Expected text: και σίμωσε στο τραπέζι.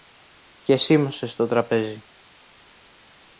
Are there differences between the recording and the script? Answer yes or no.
no